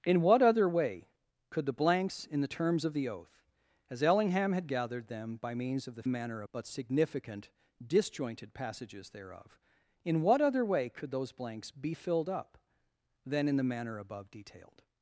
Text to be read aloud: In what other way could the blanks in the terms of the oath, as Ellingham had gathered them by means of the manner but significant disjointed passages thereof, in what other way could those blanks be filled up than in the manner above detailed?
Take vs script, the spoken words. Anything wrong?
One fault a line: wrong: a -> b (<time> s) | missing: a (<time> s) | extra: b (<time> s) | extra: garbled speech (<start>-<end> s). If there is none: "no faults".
no faults